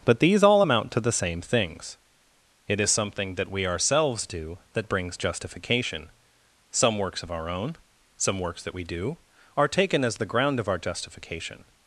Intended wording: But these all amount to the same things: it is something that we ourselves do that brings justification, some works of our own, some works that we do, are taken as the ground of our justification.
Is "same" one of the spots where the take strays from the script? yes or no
no